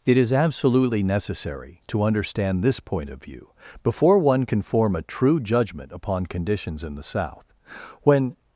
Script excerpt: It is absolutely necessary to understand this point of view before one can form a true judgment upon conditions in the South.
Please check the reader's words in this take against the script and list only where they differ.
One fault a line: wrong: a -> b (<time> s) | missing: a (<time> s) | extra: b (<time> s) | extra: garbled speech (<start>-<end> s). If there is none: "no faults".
extra: When (8.0 s)